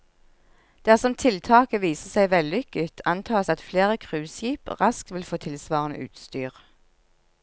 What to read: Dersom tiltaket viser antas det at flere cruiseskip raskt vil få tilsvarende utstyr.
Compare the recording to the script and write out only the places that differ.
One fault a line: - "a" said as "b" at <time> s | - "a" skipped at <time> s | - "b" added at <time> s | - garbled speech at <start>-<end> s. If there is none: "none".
- "seg vellykket" added at 2.1 s